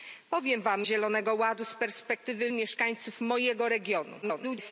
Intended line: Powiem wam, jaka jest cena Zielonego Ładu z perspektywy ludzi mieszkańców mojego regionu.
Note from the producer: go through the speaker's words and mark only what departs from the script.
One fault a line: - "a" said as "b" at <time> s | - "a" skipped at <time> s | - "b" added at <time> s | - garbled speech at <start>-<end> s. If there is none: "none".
- "jaka jest cena" skipped at 0.9 s
- "ludzi" skipped at 2.5 s
- garbled speech at 4.2-4.7 s